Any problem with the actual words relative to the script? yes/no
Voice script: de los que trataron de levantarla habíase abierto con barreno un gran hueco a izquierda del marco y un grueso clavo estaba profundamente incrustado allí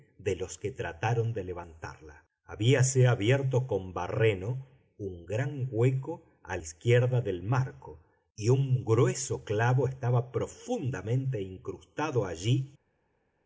no